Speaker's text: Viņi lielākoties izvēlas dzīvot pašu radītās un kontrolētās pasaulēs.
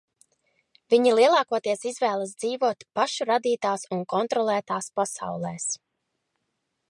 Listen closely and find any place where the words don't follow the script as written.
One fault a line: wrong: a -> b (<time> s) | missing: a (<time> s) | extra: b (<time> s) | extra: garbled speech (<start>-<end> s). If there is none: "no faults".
no faults